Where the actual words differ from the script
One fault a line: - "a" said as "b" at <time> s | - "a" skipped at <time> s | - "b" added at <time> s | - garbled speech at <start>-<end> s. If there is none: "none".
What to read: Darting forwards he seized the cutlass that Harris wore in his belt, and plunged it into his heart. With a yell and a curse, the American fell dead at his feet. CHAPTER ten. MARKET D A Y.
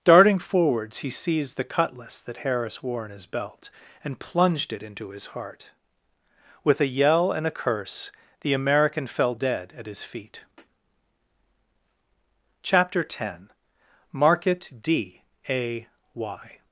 none